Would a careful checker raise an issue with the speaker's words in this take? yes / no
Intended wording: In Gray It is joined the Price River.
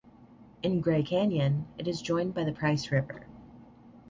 yes